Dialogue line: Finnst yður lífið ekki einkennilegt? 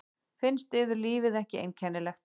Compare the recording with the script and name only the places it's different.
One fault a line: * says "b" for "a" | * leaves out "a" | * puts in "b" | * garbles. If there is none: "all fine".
all fine